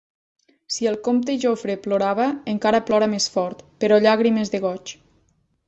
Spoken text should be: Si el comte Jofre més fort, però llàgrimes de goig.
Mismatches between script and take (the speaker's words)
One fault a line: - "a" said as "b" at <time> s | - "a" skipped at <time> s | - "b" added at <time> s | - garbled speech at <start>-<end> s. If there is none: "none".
- "plorava encara plora" added at 1.8 s